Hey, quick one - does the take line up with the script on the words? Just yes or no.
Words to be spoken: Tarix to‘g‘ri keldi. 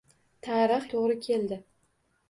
yes